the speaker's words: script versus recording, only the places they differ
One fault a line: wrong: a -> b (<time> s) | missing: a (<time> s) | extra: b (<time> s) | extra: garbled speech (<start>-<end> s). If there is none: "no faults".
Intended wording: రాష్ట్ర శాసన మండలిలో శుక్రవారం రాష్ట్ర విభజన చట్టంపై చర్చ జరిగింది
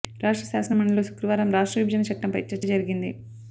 no faults